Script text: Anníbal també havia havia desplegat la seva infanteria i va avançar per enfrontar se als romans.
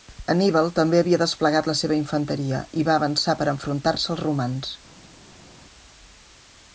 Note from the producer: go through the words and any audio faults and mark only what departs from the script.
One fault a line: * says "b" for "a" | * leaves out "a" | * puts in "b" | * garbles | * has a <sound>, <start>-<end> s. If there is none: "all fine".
* leaves out "havia"